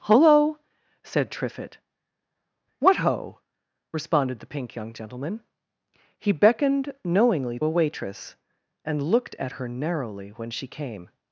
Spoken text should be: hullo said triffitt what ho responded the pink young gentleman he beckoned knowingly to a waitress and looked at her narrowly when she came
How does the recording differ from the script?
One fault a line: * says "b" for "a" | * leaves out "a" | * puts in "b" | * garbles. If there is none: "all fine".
* leaves out "to"